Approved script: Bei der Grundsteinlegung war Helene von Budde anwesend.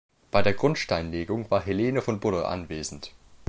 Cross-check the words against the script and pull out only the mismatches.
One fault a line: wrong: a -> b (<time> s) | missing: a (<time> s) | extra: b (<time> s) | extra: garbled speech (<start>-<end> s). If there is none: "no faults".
no faults